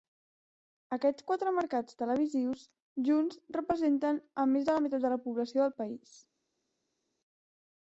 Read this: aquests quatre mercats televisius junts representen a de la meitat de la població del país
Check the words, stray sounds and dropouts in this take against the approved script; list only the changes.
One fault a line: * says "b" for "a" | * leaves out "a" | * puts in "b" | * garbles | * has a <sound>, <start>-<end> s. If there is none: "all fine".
* puts in "més"